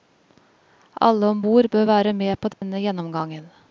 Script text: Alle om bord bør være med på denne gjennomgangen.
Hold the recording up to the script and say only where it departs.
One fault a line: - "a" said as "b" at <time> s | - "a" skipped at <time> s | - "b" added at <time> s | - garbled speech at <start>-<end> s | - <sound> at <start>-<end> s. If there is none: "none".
- dropout at 2.5-2.6 s